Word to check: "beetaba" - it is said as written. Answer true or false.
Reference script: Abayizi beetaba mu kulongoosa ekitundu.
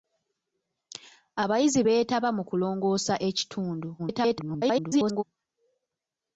true